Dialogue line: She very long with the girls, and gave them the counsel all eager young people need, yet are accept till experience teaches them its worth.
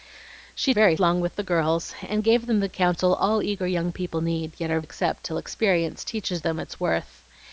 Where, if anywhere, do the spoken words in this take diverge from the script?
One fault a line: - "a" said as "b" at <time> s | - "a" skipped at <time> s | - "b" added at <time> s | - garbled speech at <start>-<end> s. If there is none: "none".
none